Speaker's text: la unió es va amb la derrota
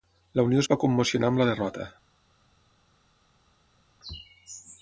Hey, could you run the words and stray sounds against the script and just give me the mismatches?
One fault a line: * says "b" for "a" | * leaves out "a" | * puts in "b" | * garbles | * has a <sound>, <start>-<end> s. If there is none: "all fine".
* puts in "commocionar"